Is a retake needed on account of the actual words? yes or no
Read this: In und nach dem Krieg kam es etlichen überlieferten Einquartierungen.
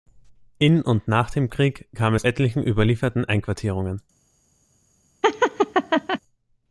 no